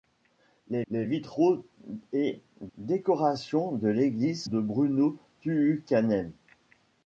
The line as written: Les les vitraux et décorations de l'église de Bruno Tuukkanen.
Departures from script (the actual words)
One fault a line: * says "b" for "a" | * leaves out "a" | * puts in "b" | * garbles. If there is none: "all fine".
all fine